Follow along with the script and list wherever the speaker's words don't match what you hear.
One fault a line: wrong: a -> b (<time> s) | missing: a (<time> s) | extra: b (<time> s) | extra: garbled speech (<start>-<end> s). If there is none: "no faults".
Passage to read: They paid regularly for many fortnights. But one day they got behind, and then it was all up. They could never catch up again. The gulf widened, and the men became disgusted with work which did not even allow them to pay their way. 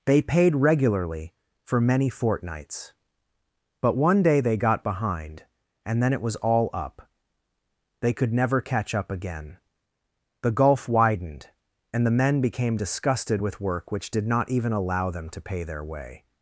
no faults